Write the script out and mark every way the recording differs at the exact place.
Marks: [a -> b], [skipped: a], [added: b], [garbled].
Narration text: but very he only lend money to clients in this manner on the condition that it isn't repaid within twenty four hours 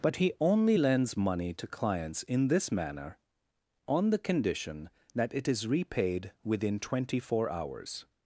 but [skipped: very] he only [lend -> lends] money to clients in this manner on the condition that it [isn't -> is] repaid within twenty four hours